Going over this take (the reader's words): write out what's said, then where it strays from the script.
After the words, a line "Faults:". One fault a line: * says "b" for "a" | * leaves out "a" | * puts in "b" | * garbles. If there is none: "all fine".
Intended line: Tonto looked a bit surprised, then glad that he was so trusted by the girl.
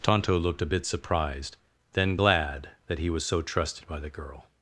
Tonto looked a bit surprised, then glad that he was so trusted by the girl.
Faults:
all fine